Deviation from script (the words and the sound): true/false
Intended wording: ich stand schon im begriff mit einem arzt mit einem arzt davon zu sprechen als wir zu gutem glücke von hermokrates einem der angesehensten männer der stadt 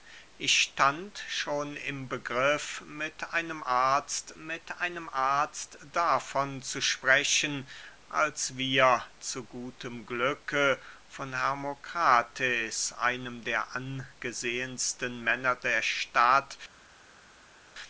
false